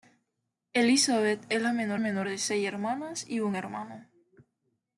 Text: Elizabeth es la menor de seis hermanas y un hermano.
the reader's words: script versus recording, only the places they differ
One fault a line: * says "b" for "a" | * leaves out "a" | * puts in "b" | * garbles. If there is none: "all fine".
* puts in "menor"